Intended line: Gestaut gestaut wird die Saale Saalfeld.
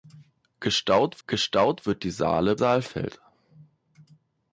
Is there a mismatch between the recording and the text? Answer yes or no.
no